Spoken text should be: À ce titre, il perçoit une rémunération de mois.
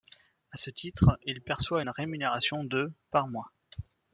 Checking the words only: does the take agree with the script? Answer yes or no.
no